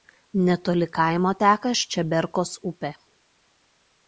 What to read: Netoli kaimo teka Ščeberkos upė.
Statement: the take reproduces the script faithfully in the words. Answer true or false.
true